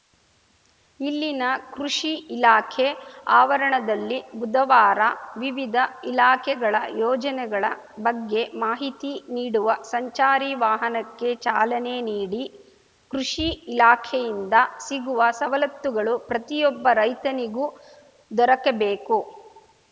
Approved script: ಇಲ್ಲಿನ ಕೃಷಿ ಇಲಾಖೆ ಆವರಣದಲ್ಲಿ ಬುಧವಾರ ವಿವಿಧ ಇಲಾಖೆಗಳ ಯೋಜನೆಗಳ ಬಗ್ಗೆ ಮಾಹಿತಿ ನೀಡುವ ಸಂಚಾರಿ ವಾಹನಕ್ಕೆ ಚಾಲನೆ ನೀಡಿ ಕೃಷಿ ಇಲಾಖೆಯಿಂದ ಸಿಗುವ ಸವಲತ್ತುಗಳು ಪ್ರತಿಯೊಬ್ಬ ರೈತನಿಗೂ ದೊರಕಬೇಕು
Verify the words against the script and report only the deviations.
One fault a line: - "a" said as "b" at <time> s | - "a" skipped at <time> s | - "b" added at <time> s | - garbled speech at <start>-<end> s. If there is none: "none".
none